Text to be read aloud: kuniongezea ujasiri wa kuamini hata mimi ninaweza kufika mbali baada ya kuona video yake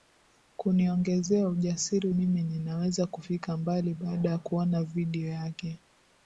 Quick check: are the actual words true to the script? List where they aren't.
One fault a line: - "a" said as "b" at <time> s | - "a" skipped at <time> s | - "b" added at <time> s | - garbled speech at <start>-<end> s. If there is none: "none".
- "wa kuamini hata" skipped at 2.1 s